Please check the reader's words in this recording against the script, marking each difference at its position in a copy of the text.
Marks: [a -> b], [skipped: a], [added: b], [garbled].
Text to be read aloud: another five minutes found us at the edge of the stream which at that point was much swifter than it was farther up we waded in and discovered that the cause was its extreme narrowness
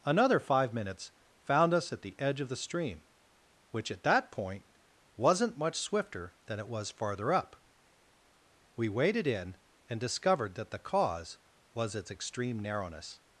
another five minutes found us at the edge of the stream which at that point [was -> wasn't] much swifter than it was farther up we waded in and discovered that the cause was its extreme narrowness